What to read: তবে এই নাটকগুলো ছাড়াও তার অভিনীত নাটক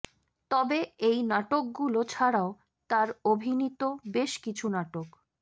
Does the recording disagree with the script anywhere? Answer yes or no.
yes